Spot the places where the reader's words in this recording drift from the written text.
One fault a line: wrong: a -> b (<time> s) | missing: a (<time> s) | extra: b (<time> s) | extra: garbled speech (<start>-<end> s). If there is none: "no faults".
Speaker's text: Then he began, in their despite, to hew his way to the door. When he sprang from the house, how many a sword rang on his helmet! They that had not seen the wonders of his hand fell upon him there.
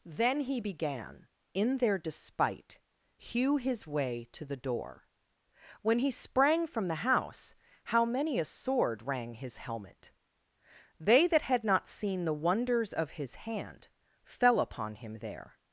missing: to (2.8 s)
missing: on (9.3 s)